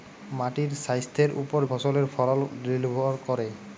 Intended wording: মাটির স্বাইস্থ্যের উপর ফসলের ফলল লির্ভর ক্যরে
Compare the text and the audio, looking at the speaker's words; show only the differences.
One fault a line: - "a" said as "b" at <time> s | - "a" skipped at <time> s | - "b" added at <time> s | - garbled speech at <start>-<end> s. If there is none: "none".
none